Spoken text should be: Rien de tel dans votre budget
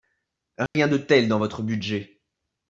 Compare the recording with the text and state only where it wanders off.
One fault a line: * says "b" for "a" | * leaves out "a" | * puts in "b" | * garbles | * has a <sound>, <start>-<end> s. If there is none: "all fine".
* has a dropout, 0.7-0.7 s